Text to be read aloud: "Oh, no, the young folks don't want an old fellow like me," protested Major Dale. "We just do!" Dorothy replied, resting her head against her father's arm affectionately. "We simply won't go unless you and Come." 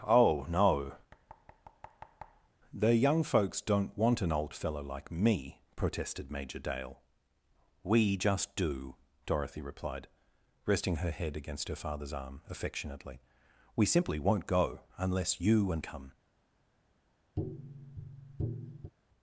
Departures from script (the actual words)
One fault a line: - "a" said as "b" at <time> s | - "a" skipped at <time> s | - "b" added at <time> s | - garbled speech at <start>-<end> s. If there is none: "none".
none